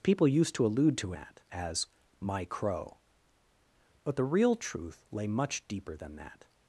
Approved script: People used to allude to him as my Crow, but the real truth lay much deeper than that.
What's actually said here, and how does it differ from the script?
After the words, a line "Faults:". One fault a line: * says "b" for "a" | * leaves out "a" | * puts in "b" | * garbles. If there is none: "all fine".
People used to allude to that as my Crow, but the real truth lay much deeper than that.
Faults:
* says "that" for "him"